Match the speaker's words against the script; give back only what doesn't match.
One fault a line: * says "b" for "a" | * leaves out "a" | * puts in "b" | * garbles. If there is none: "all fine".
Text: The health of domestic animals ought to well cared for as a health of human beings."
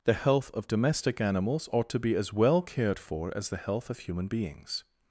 * puts in "be as"
* says "the" for "a"